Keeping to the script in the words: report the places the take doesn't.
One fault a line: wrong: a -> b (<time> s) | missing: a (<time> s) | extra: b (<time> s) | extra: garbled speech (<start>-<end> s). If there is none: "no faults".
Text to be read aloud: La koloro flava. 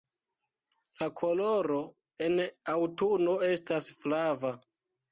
extra: en aŭtuno estas (2.3 s)